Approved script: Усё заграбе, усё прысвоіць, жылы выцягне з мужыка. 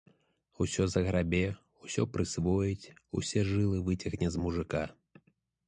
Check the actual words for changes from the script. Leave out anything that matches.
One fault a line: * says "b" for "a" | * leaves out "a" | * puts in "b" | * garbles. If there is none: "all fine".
* puts in "усе"